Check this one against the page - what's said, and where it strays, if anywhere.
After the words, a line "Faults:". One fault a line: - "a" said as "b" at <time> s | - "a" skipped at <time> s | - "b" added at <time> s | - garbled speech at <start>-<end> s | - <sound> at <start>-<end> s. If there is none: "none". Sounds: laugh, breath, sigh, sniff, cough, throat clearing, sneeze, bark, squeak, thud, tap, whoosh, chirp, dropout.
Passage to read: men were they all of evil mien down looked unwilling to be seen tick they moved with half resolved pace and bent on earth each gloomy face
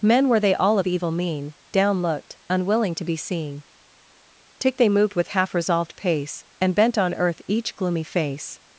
men were they all of evil mien down looked unwilling to be seen tick they moved with half resolved pace and bent on earth each gloomy face
Faults:
none